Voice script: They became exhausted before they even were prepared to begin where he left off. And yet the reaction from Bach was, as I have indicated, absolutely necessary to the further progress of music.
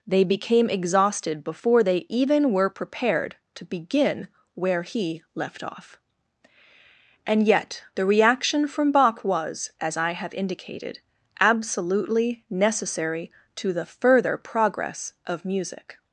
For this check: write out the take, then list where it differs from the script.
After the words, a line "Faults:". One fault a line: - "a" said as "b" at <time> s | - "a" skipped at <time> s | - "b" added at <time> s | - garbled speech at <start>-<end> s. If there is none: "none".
They became exhausted before they even were prepared to begin where he left off. And yet the reaction from Bach was, as I have indicated, absolutely necessary to the further progress of music.
Faults:
none